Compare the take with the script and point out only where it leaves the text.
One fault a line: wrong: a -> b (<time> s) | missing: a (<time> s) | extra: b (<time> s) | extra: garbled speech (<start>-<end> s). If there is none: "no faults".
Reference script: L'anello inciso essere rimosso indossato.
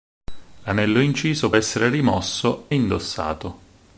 no faults